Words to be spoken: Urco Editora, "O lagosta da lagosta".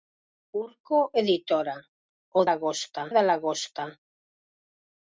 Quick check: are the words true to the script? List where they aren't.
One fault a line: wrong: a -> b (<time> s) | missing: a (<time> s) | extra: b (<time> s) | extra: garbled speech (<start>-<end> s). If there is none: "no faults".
no faults